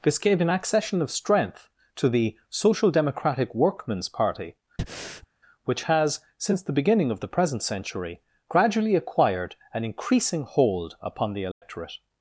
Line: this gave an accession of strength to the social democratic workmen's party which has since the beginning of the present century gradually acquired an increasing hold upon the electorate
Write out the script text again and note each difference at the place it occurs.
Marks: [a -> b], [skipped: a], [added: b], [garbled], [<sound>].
this gave an accession of strength to the social democratic workmen's party [breath] which has since the beginning of the present century gradually acquired an increasing hold upon the electorate [dropout]